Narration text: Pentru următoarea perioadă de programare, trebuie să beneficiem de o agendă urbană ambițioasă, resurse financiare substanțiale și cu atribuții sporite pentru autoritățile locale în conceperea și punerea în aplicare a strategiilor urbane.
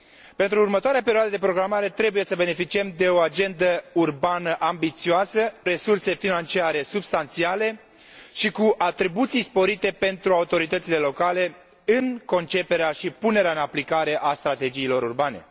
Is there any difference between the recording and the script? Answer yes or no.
no